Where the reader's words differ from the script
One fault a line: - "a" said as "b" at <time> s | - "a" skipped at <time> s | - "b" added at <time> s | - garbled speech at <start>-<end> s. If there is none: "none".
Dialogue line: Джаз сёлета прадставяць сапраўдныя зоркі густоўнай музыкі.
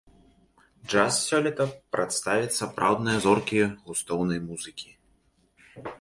none